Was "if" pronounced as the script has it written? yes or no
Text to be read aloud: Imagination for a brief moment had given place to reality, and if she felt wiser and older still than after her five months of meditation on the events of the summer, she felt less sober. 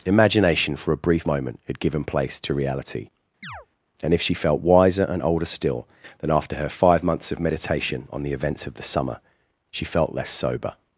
yes